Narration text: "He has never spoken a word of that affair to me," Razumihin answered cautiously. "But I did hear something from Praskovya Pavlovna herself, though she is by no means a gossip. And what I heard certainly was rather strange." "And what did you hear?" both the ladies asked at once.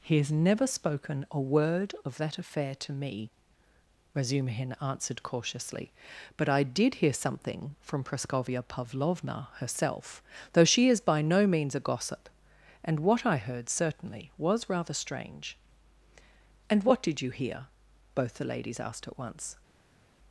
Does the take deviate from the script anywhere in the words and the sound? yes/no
no